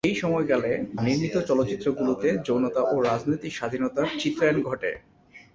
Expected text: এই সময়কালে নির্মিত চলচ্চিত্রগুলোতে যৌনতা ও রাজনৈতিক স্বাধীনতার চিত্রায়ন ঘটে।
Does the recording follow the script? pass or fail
pass